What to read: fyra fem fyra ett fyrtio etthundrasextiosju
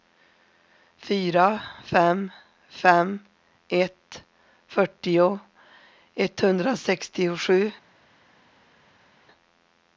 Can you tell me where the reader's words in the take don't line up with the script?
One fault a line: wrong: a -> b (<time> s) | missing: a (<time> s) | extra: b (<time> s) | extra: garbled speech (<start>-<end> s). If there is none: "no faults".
wrong: fyra -> fem (2.7 s)